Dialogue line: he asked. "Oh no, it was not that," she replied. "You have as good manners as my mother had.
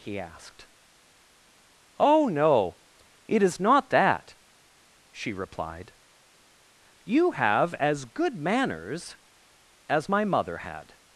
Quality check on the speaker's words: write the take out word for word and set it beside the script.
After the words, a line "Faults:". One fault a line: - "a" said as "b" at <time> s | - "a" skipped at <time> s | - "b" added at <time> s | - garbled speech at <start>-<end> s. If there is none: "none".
he asked. "Oh no, it is not that," she replied. "You have as good manners as my mother had.
Faults:
- "was" said as "is" at 3.4 s